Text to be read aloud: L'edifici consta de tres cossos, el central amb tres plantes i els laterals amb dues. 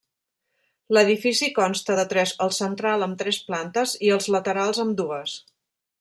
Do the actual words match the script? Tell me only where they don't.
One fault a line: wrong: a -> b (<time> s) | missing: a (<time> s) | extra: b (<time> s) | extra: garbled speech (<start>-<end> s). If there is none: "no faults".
missing: cossos (2.3 s)